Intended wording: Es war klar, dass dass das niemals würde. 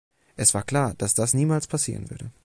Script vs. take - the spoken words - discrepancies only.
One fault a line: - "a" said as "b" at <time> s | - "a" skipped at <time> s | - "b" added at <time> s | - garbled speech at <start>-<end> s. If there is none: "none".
- "dass" skipped at 1.1 s
- "passieren" added at 1.7 s